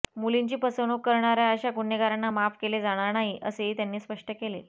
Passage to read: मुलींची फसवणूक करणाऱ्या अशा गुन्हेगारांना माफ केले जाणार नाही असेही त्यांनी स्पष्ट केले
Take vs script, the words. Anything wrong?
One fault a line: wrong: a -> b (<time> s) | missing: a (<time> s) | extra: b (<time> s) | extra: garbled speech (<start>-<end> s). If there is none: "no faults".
no faults